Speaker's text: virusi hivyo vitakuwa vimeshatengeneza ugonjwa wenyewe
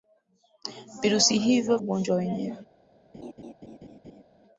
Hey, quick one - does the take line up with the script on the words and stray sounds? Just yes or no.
no